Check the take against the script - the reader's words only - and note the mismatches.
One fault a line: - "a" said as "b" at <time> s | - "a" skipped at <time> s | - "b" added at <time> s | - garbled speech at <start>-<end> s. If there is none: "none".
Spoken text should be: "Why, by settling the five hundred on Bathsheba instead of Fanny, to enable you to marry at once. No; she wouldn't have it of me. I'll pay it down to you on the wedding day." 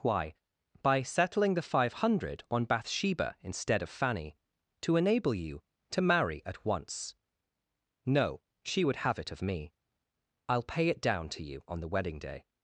- "wouldn't" said as "would" at 8.8 s